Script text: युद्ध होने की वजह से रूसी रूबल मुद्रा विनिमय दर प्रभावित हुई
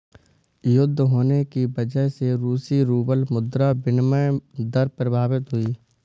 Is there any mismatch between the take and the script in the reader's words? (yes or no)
no